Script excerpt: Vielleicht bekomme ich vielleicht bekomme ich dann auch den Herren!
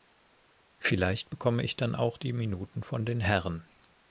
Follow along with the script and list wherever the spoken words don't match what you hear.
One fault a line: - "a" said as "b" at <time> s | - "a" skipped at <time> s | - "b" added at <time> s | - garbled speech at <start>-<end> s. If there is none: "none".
- "vielleicht bekomme ich dann auch" said as "dann auch die Minuten von" at 1.7 s